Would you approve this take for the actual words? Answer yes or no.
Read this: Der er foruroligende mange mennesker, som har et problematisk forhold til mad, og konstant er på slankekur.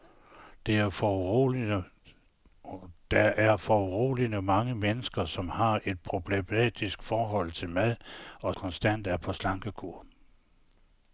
yes